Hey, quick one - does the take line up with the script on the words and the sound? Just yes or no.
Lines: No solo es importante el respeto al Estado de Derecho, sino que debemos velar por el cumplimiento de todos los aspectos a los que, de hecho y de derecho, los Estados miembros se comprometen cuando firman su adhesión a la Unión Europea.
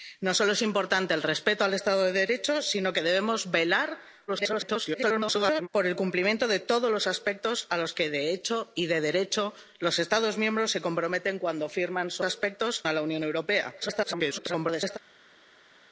no